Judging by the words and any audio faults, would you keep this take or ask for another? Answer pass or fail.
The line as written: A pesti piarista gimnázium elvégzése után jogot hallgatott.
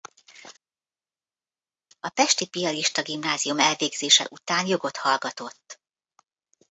pass